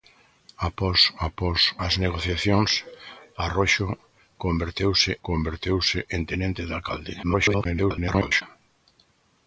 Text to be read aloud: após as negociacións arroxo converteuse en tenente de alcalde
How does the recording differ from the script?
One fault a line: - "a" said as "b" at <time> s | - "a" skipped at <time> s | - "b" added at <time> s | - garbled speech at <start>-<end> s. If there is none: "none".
- "após" added at 1.3 s
- "converteuse" added at 5.3 s
- garbled speech at 7.2-8.4 s